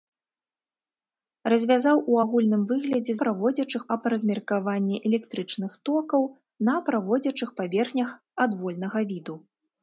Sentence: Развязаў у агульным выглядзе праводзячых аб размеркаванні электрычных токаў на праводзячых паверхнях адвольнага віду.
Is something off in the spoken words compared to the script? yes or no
no